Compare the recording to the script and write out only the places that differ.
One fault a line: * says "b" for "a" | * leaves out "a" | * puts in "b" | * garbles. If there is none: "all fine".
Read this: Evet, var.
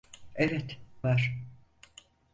all fine